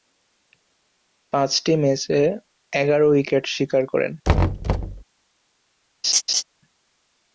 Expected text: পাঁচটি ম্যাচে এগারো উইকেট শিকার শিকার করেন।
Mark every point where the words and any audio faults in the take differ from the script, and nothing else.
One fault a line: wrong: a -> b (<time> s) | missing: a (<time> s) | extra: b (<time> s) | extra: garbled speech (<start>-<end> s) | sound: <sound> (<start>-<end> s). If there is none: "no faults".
missing: শিকার (3.8 s)
sound: thud (4.2-5.0 s)
sound: laugh (6.0-6.4 s)